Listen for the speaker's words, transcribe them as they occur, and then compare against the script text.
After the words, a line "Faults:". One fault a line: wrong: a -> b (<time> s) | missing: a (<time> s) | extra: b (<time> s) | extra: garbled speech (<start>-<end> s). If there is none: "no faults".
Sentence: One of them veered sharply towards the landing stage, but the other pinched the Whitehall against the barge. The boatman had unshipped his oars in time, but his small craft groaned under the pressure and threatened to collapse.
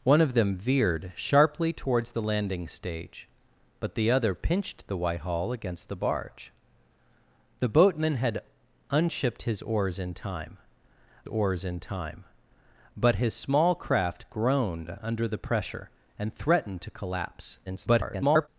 One of them veered sharply towards the landing stage, but the other pinched the Whitehall against the barge. The boatman had unshipped his oars in time oars in time, but his small craft groaned under the pressure and threatened to collapse. [garbled]
Faults:
extra: oars in time (11.3 s)
extra: garbled speech (17.7-18.5 s)